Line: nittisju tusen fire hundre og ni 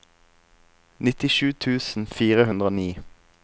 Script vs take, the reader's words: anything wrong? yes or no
no